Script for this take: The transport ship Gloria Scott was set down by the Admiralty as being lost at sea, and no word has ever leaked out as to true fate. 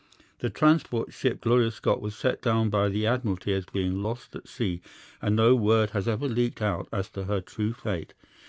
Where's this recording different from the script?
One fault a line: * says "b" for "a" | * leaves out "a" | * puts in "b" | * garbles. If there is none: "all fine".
* puts in "her"